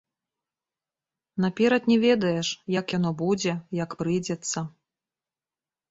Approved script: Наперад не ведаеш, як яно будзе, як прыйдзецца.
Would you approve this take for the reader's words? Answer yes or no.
yes